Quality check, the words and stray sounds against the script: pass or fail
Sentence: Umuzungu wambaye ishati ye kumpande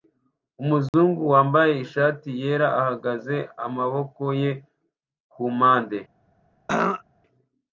fail